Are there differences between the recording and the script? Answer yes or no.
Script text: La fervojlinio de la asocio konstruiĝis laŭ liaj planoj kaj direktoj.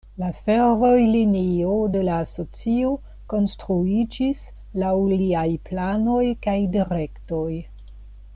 no